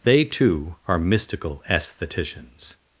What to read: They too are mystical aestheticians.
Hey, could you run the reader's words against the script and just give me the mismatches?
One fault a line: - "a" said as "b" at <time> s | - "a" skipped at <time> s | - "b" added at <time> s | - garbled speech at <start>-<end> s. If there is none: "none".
none